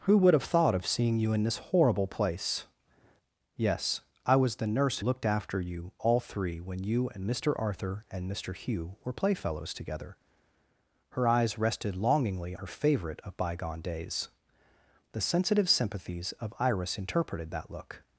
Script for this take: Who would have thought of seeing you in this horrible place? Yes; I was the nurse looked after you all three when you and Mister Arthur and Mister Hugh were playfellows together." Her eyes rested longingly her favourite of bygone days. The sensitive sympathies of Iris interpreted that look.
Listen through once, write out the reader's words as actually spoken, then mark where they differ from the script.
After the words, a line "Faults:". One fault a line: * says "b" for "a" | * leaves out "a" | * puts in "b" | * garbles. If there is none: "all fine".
Who would have thought of seeing you in this horrible place? Yes; I was the nurse looked after you all three when you and Mister Arthur and Mister Hugh were playfellows together." Her eyes rested longingly her favourite of bygone days. The sensitive sympathies of Iris interpreted that look.
Faults:
all fine